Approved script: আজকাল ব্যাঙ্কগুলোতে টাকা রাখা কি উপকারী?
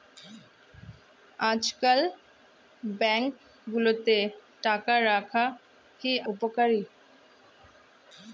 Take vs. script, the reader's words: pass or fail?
pass